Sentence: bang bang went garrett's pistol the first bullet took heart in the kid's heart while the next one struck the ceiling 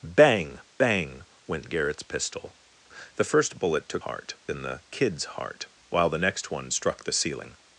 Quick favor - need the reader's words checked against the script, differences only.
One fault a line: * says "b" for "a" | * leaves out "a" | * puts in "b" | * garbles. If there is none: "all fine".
all fine